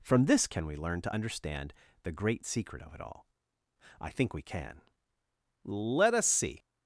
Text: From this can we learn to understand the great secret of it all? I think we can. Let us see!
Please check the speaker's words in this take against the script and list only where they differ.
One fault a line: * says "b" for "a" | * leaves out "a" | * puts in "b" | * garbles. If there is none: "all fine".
all fine